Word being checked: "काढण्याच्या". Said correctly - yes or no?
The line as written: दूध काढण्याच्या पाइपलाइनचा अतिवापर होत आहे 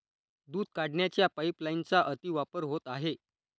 yes